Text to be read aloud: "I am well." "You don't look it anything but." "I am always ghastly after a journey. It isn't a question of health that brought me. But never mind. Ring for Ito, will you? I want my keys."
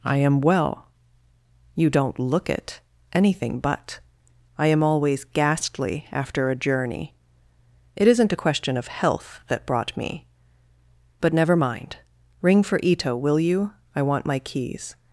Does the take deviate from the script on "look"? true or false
false